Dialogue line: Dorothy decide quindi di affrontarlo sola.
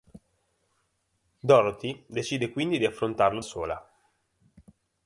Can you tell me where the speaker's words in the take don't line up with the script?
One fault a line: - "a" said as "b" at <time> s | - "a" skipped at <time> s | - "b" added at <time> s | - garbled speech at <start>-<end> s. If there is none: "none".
none